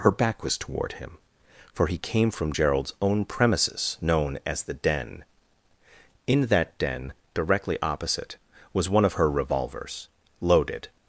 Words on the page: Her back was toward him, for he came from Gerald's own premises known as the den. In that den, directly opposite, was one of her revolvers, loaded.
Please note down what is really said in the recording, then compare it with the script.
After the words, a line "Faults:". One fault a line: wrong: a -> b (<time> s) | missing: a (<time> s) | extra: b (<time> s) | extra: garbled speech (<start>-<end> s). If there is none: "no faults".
Her back was toward him, for he came from Gerald's own premises known as the den. In that den, directly opposite, was one of her revolvers, loaded.
Faults:
no faults